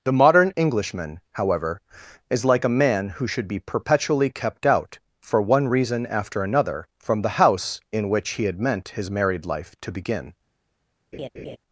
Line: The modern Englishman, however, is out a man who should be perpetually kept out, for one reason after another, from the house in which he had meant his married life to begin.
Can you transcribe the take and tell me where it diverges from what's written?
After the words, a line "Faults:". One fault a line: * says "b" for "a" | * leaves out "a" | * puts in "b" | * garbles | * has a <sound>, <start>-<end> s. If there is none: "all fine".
The modern Englishman, however, is like a man who should be perpetually kept out, for one reason after another, from the house in which he had meant his married life to begin.
Faults:
* says "like" for "out"
* has a laugh, 11.1-11.6 s